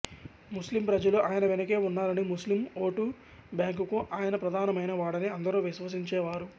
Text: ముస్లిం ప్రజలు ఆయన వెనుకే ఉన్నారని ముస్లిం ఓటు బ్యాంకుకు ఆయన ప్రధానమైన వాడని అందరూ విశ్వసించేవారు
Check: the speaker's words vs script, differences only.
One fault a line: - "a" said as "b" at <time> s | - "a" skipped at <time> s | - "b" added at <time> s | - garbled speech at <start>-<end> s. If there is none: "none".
none